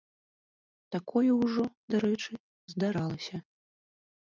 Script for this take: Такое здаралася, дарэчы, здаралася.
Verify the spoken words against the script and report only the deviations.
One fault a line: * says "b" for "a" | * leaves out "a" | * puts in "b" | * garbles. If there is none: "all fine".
* says "ўжо" for "здаралася"